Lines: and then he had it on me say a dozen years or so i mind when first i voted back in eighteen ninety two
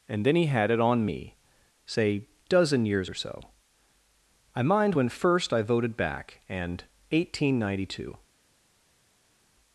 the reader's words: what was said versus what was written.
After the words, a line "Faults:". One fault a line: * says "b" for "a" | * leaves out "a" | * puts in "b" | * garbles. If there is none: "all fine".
and then he had it on me say dozen years or so i mind when first i voted back and eighteen ninety two
Faults:
* leaves out "a"
* says "and" for "in"